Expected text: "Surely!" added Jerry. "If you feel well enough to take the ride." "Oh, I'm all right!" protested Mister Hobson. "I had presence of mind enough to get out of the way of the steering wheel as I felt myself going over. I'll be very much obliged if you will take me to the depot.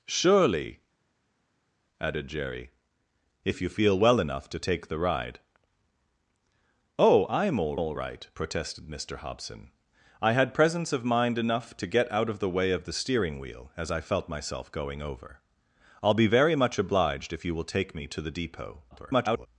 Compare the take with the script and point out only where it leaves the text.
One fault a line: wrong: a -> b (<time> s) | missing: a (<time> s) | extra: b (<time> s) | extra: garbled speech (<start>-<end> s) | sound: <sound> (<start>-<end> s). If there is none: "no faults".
extra: all (7.8 s)
extra: garbled speech (18.9-19.5 s)